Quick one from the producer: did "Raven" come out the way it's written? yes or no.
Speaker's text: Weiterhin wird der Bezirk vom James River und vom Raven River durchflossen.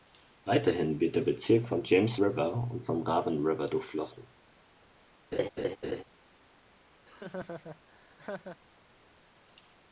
yes